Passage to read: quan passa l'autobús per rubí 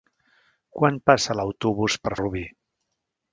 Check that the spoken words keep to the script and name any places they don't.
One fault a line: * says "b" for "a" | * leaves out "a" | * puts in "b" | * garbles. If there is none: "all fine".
all fine